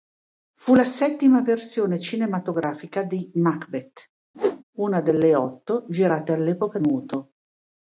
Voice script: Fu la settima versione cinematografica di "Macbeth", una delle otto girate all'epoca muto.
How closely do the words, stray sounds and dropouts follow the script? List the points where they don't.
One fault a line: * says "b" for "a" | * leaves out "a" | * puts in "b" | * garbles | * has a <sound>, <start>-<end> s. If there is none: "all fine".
* has a whoosh, 4.3-4.6 s